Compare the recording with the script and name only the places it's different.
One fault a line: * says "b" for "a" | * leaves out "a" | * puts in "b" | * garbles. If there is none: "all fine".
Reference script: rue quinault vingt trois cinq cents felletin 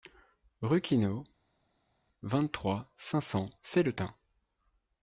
all fine